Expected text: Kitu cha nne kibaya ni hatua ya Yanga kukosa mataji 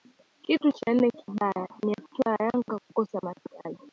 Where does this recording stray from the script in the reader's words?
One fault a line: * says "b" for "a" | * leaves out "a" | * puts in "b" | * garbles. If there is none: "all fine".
all fine